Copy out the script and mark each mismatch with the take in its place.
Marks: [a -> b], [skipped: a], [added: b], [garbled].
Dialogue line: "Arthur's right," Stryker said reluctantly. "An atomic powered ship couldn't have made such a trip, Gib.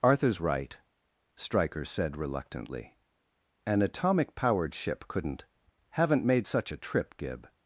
"Arthur's right," Stryker said reluctantly. "An atomic powered ship couldn't [have -> haven't] made such a trip, Gib.